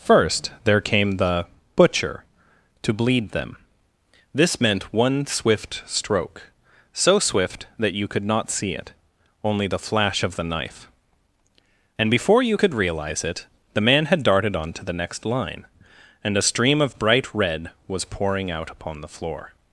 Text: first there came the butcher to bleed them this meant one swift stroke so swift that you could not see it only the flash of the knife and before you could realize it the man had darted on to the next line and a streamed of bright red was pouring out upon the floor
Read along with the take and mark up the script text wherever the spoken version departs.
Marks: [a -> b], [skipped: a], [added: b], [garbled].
first there came the butcher to bleed them this meant one swift stroke so swift that you could not see it only the flash of the knife and before you could realize it the man had darted on to the next line and a [streamed -> stream] of bright red was pouring out upon the floor